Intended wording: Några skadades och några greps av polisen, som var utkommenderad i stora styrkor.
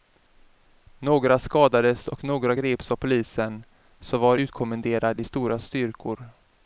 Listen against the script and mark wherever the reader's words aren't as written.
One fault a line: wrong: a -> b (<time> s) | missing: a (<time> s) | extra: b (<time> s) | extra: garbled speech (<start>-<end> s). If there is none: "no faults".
no faults